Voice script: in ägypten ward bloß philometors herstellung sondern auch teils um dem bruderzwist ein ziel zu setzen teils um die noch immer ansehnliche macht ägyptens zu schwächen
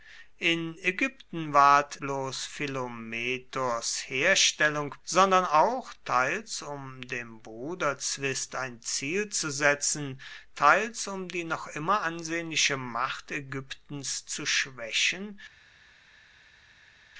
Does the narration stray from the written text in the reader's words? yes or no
no